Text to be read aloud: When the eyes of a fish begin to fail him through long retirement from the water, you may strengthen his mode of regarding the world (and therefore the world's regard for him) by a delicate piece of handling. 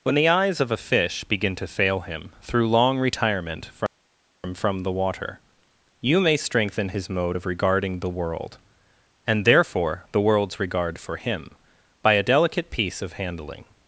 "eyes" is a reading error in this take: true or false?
false